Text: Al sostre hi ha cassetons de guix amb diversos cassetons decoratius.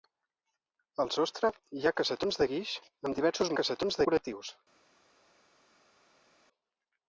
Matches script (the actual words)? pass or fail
pass